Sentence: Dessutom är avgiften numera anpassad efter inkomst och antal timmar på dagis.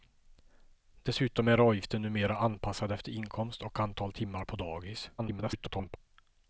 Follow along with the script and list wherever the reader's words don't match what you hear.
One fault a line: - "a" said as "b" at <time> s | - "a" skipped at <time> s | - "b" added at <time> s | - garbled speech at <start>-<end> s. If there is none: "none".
- garbled speech at 5.2-6.0 s